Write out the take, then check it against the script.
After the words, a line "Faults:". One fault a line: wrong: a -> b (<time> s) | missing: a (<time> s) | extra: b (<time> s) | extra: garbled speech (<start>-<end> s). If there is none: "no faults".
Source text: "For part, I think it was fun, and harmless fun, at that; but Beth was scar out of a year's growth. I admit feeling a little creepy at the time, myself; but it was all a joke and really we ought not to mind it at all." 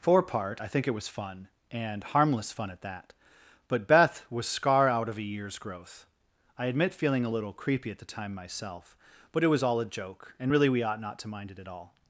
"For part, I think it was fun, and harmless fun, at that; but Beth was scar out of a year's growth. I admit feeling a little creepy at the time, myself; but it was all a joke and really we ought not to mind it at all."
Faults:
no faults